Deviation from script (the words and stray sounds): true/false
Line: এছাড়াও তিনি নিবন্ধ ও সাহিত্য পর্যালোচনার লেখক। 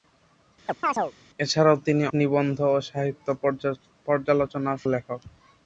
true